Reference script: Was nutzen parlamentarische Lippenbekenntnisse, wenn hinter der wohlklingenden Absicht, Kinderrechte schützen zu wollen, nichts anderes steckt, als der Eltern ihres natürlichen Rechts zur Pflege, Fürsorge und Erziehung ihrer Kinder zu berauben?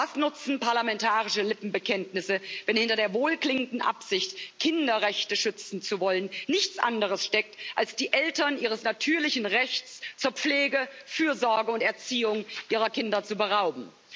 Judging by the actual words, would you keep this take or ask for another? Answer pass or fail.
fail